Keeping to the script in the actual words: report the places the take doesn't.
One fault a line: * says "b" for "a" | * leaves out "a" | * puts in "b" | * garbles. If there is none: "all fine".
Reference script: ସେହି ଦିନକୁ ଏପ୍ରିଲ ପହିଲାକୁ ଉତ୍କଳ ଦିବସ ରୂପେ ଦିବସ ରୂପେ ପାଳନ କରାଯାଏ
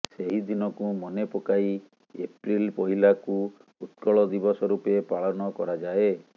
* puts in "ମନେ ପକାଇ"
* leaves out "ଦିବସ ରୂପେ"